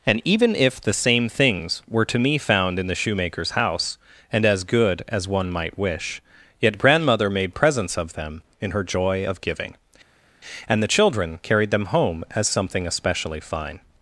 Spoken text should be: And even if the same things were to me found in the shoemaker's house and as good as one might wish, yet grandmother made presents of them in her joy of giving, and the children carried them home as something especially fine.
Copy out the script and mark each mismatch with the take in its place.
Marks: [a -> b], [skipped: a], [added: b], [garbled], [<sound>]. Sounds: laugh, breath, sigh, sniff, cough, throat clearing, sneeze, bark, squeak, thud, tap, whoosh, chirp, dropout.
And even if the same things were to me found in the shoemaker's house and as good as one might wish, yet grandmother made presents of them in her joy of giving, and the children carried them home as something especially fine.